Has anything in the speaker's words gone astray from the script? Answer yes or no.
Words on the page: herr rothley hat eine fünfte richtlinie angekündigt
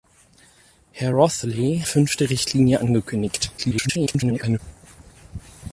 yes